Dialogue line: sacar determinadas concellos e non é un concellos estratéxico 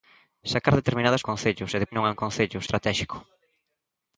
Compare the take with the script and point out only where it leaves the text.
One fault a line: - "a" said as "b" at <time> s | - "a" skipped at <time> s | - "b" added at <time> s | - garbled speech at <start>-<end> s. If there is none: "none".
none